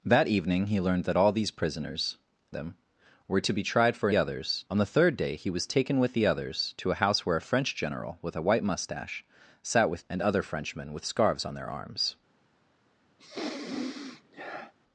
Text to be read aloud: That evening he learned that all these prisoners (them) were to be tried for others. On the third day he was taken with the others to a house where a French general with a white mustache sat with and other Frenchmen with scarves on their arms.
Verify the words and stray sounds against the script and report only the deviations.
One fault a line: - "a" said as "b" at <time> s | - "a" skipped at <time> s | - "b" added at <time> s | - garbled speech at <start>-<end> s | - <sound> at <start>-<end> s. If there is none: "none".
- sniff at 13.2-14.7 s